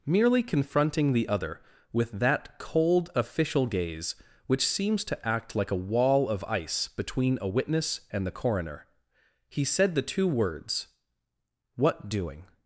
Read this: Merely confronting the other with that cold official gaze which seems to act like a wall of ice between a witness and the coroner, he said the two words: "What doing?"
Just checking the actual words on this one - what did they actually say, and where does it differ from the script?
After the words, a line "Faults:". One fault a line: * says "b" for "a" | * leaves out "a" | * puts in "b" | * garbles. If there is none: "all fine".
Merely confronting the other with that cold official gaze which seems to act like a wall of ice between a witness and the coroner, he said the two words: "What doing?"
Faults:
all fine